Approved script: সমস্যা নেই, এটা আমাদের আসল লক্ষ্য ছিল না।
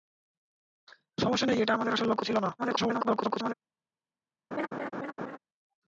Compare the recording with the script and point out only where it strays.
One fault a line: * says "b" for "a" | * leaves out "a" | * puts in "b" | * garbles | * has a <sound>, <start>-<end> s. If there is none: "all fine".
* garbles
* has a laugh, 4.5-5.4 s